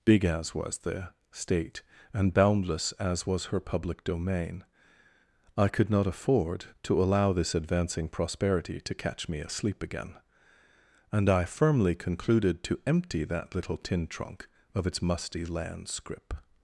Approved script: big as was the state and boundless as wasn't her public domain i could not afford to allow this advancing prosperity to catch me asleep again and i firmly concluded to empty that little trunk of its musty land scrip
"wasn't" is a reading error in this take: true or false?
true